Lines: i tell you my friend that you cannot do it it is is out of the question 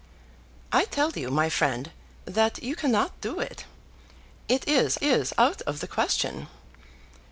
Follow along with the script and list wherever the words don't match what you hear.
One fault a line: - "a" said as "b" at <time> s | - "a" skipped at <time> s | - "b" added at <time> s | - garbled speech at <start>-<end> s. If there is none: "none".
none